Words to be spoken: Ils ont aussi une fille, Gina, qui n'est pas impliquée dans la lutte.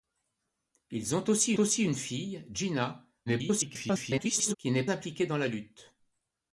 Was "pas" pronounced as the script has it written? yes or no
no